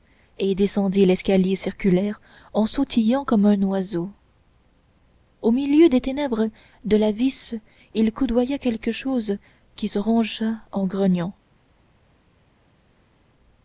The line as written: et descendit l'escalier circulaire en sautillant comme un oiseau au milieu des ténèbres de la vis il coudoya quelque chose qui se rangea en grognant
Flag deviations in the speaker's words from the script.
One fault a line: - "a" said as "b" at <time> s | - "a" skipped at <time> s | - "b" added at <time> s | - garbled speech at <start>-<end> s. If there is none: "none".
none